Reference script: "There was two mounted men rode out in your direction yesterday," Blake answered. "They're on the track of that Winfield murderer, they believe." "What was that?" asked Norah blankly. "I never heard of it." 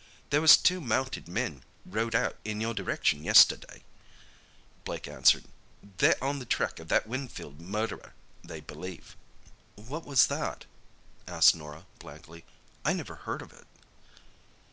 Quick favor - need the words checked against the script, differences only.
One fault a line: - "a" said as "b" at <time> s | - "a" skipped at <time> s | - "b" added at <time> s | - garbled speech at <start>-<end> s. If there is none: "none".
none